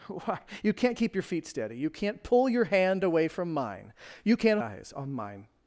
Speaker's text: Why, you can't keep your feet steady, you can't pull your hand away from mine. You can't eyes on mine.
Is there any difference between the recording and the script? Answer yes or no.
no